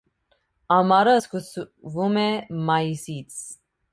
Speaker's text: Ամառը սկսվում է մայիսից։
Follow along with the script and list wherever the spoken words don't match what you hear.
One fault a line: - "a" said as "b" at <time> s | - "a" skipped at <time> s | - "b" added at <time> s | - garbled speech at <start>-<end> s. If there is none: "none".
none